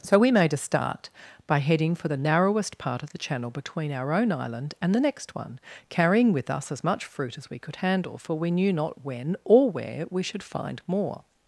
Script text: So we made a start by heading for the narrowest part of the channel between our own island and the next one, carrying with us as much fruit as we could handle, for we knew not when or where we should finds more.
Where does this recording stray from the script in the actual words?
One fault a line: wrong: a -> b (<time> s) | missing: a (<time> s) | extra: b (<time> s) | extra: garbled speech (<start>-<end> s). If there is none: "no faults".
wrong: finds -> find (10.4 s)